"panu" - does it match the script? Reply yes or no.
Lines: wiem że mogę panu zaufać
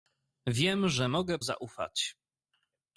no